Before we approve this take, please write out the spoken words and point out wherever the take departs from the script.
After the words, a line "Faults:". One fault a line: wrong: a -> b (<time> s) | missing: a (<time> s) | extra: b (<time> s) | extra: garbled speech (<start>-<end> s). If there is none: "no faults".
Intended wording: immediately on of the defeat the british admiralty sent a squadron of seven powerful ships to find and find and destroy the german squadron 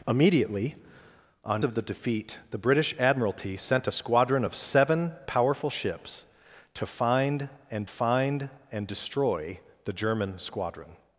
immediately on of the defeat the british admiralty sent a squadron of seven powerful ships to find and find and destroy the german squadron
Faults:
no faults